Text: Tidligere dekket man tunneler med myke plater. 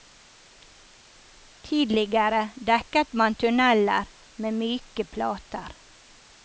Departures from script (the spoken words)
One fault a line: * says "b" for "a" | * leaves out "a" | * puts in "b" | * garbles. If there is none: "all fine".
all fine